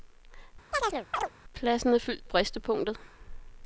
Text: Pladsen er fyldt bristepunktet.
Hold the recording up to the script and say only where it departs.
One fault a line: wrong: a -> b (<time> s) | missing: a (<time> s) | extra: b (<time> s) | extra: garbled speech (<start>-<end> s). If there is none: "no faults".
no faults